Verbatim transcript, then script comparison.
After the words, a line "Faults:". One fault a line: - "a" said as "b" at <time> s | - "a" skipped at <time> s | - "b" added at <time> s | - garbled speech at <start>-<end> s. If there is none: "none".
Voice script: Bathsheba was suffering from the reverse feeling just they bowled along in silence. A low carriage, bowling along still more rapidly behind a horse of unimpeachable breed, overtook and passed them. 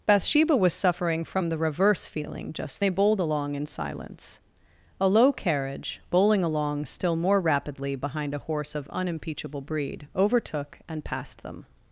Bathsheba was suffering from the reverse feeling just they bowled along in silence. A low carriage, bowling along still more rapidly behind a horse of unimpeachable breed, overtook and passed them.
Faults:
none